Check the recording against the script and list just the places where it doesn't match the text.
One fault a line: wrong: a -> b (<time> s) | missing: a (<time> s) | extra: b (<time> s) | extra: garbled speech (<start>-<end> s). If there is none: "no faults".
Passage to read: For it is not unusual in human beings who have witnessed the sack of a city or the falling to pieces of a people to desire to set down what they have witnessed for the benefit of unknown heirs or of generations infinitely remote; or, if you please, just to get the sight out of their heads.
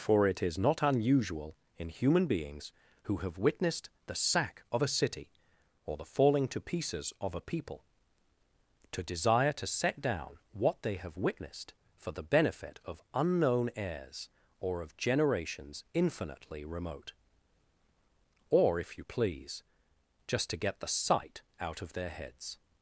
no faults